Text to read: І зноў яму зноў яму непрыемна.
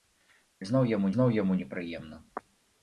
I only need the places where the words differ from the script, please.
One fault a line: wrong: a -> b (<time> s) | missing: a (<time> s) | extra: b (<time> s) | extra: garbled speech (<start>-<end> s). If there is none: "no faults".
no faults